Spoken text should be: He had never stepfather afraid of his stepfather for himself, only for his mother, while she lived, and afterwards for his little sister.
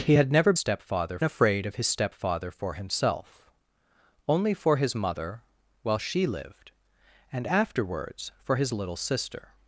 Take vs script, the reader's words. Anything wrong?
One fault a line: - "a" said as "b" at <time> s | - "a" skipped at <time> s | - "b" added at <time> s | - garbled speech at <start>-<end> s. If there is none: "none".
none